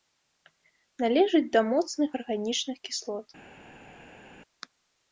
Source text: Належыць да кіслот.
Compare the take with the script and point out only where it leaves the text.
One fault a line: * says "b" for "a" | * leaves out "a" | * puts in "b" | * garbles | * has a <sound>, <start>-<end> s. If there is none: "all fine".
* puts in "моцных арганічных"